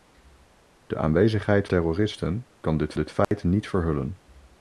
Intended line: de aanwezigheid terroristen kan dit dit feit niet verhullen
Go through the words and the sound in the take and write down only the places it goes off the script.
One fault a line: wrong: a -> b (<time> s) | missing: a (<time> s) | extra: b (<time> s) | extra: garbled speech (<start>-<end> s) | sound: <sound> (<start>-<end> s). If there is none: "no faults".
sound: dropout (3.2-3.3 s)